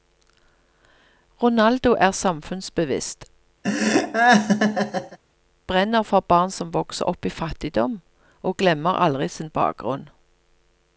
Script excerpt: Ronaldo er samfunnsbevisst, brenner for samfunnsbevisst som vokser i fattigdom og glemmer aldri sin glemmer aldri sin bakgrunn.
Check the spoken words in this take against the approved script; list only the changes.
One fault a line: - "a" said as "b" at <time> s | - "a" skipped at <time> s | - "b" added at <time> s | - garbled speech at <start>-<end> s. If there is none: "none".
- "samfunnsbevisst" said as "barn" at 6.2 s
- "opp" added at 7.1 s
- "glemmer aldri sin" skipped at 9.5 s